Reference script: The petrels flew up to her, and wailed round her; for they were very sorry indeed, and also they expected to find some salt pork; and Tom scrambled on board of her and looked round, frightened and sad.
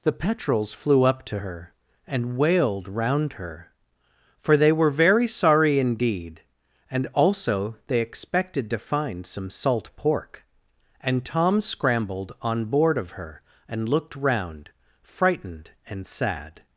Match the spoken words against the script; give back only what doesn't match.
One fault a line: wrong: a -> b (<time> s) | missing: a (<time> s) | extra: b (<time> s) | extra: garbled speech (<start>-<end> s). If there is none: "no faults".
no faults